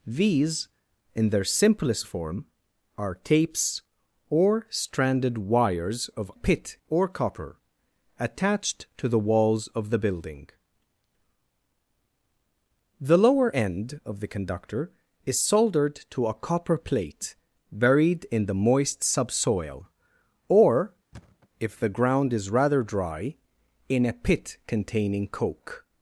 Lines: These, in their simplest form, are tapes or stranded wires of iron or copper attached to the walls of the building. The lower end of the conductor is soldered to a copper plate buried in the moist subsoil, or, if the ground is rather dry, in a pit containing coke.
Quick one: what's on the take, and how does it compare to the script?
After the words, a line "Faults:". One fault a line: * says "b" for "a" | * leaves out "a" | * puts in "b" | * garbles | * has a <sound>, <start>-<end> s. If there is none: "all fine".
These, in their simplest form, are tapes or stranded wires of pit or copper attached to the walls of the building. The lower end of the conductor is soldered to a copper plate buried in the moist subsoil, or, if the ground is rather dry, in a pit containing coke.
Faults:
* says "pit" for "iron"
* has a thud, 21.1-21.5 s